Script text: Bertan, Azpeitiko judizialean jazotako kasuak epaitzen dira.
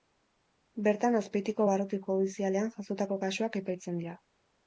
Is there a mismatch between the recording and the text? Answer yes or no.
yes